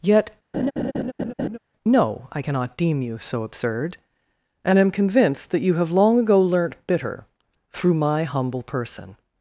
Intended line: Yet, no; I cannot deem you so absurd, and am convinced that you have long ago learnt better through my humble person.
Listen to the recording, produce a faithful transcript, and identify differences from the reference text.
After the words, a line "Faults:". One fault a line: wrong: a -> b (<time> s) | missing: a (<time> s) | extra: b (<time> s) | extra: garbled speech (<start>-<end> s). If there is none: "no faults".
Yet, no; I cannot deem you so absurd, and am convinced that you have long ago learnt bitter through my humble person.
Faults:
wrong: better -> bitter (6.9 s)